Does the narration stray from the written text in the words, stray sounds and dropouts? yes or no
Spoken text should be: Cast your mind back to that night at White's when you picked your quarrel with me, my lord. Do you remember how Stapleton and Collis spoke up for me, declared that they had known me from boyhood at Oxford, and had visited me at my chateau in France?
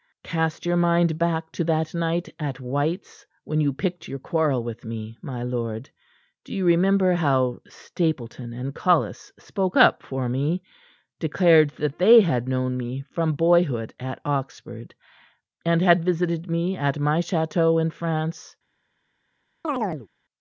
yes